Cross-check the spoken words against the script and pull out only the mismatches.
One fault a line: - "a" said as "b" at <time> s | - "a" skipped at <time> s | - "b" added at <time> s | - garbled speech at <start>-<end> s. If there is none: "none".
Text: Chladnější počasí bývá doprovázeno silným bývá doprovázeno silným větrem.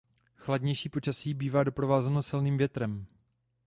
- "bývá doprovázeno silným" skipped at 2.6 s